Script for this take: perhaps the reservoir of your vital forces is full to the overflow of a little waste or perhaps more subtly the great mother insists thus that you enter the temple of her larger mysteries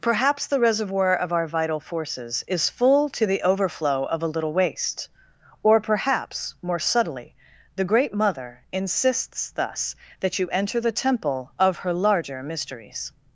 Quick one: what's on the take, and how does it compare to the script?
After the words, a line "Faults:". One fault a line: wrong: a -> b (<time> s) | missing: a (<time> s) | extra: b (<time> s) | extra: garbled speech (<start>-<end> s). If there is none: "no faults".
perhaps the reservoir of our vital forces is full to the overflow of a little waste or perhaps more subtly the great mother insists thus that you enter the temple of her larger mysteries
Faults:
wrong: your -> our (1.3 s)